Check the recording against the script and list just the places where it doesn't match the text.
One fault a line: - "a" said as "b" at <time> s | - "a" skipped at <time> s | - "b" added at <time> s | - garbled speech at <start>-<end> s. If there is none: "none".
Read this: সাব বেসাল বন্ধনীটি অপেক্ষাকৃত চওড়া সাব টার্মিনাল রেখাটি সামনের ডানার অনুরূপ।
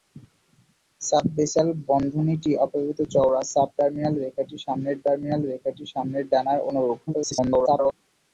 - "টার্মিনাল রেখাটি সামনের" added at 5.0 s
- garbled speech at 7.1-7.9 s